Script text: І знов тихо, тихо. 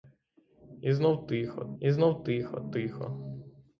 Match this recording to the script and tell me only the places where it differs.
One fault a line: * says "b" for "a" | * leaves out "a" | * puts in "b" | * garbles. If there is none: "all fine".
* puts in "і знов тихо"